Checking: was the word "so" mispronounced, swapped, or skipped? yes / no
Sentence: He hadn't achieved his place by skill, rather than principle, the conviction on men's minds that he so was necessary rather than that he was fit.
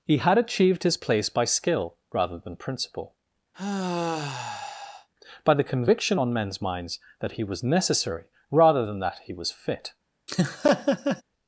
yes